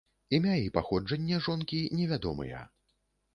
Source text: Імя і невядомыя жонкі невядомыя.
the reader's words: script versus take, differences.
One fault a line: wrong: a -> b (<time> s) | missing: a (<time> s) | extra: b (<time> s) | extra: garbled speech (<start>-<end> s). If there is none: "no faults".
wrong: невядомыя -> паходжанне (0.8 s)